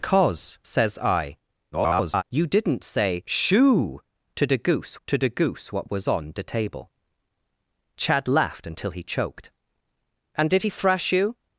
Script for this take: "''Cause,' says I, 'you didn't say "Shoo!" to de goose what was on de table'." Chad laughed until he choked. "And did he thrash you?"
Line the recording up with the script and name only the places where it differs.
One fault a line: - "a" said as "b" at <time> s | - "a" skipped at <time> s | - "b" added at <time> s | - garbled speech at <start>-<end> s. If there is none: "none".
- garbled speech at 1.7-2.2 s
- "to de goose" added at 5.1 s